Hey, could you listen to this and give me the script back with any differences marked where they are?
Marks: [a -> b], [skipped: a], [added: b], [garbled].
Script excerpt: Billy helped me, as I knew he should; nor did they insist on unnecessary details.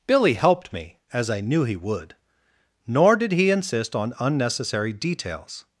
Billy helped me, as I knew he [should; -> would] nor did [they -> he] insist on unnecessary details.